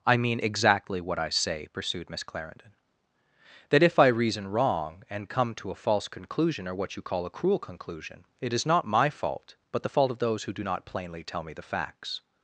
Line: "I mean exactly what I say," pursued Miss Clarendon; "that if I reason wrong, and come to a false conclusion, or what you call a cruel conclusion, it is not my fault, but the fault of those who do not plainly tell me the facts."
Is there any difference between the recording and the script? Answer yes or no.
no